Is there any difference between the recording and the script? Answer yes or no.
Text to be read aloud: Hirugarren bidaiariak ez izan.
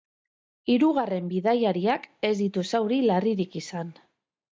yes